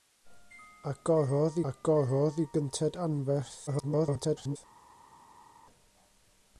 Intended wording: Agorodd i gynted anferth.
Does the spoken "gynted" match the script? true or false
true